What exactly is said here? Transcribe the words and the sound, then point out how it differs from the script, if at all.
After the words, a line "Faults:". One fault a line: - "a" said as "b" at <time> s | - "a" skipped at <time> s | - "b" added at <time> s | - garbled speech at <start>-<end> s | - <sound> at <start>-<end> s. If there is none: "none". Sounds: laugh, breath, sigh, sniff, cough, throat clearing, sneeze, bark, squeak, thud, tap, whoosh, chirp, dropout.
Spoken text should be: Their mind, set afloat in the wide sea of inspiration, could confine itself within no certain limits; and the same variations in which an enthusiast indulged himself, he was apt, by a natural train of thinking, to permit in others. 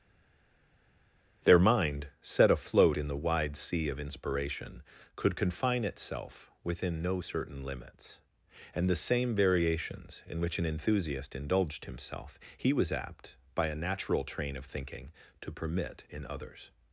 Their mind, set afloat in the wide sea of inspiration, could confine itself within no certain limits; and the same variations in which an enthusiast indulged himself, he was apt, by a natural train of thinking, to permit in others.
Faults:
none